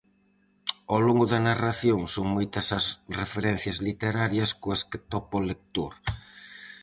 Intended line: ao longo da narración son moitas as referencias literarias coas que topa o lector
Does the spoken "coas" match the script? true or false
true